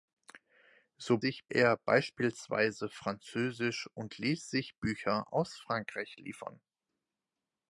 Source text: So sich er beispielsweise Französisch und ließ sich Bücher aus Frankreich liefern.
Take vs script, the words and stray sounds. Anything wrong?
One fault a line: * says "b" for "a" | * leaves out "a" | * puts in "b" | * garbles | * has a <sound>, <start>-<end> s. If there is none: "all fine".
all fine